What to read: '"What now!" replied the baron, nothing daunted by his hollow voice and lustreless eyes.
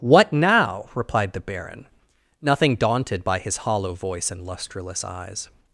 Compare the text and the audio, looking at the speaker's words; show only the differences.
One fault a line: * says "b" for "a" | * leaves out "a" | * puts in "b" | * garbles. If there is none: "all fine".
all fine